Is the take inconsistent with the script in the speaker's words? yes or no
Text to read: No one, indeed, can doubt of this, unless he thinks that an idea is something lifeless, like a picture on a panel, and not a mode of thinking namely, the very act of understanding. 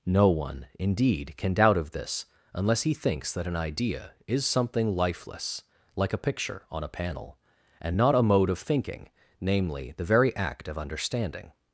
no